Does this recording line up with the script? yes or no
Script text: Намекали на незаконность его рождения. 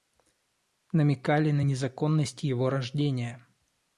yes